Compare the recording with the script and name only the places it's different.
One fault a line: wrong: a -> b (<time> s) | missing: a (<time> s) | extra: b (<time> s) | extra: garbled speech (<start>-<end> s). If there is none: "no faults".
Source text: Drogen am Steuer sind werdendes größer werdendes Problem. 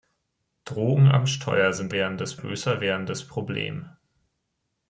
no faults